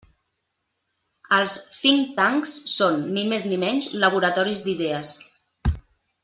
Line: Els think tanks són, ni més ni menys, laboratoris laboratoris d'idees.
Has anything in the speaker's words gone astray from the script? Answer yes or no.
yes